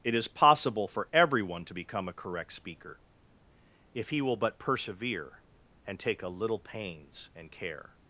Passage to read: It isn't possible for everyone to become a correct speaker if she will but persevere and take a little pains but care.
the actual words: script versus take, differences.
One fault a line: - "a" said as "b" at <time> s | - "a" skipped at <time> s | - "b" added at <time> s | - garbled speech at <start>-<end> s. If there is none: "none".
- "isn't" said as "is" at 0.1 s
- "she" said as "he" at 4.1 s
- "but" said as "and" at 7.3 s